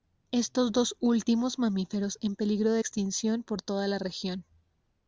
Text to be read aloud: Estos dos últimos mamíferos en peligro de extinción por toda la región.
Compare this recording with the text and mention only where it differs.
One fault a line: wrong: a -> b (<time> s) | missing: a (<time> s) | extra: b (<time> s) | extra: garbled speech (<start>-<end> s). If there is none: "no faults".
no faults